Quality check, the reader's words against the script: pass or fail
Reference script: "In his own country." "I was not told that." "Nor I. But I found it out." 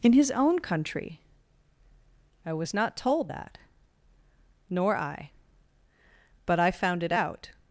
pass